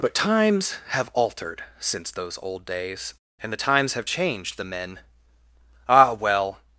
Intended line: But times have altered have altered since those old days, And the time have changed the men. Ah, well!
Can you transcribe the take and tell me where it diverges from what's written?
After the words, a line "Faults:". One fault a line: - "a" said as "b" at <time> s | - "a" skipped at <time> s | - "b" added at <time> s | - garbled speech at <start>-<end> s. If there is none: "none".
But times have altered since those old days, And the times have changed the men. Ah, well!
Faults:
- "have altered" skipped at 1.6 s
- "time" said as "times" at 3.6 s